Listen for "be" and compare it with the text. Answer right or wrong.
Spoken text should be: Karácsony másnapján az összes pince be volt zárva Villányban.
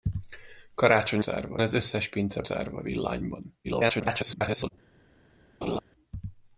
wrong